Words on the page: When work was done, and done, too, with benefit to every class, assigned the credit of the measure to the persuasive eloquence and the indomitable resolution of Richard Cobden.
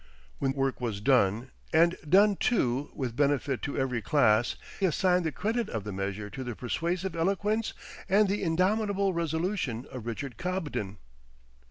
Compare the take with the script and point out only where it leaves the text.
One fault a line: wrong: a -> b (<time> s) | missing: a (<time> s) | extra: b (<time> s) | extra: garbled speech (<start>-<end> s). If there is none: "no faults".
no faults